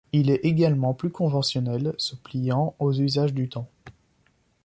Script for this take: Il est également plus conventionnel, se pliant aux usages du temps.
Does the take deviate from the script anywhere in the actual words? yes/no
no